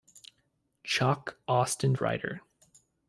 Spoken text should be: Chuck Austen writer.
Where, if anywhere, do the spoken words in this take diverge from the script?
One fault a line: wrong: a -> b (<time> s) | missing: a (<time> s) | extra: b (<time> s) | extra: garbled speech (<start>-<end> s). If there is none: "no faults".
no faults